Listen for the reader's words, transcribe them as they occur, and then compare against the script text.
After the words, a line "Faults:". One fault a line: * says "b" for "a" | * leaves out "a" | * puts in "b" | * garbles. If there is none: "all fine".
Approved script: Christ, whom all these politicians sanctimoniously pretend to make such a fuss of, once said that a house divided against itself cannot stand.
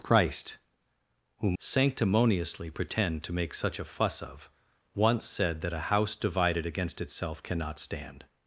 Christ, whom sanctimoniously pretend to make such a fuss of, once said that a house divided against itself cannot stand.
Faults:
* leaves out "all these politicians"